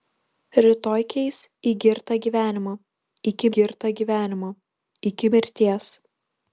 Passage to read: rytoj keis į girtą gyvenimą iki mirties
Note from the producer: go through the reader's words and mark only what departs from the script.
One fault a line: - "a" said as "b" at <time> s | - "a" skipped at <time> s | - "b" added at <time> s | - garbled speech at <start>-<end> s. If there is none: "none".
- "girtą gyvenimą iki" added at 3.6 s